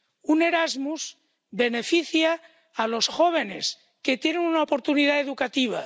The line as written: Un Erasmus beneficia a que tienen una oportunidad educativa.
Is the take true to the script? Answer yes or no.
no